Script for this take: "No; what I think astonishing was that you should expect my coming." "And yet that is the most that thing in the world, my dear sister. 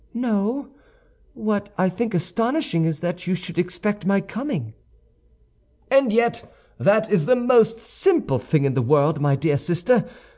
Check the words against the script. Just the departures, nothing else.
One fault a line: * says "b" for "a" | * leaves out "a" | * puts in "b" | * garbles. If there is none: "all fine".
* says "is" for "was"
* says "simple" for "that"